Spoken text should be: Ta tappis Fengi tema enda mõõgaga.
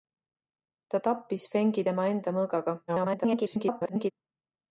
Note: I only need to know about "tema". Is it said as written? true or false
true